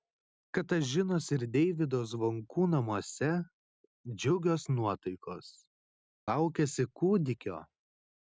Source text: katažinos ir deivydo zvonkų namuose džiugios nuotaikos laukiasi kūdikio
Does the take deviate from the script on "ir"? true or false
false